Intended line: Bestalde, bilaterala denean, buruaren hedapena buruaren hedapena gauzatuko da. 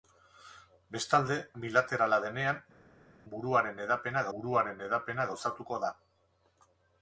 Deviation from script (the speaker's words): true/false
false